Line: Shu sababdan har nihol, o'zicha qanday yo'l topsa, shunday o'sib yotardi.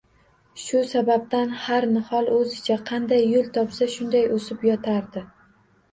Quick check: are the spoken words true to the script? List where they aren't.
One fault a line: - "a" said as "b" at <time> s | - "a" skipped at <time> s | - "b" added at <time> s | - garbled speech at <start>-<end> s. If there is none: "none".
none